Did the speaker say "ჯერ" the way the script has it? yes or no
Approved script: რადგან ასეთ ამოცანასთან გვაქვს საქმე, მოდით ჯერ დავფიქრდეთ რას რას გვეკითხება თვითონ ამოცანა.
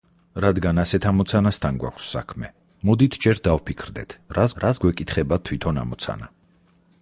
yes